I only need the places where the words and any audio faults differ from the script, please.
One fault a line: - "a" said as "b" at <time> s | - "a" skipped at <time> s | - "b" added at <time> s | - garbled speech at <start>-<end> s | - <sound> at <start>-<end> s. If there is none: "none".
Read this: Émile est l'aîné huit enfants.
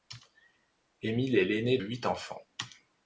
none